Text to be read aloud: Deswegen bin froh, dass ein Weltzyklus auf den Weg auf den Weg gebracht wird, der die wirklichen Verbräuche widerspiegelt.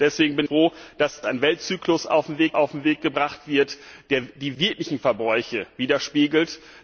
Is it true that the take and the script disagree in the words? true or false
false